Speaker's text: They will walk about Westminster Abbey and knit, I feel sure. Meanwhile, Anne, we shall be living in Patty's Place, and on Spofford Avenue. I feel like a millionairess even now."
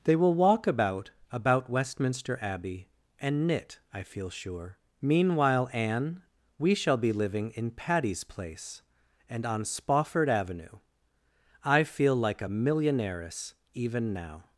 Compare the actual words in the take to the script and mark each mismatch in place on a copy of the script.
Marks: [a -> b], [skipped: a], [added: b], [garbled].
They will walk about [added: about] Westminster Abbey and knit, I feel sure. Meanwhile, Anne, we shall be living in Patty's Place, and on Spofford Avenue. I feel like a millionairess even now."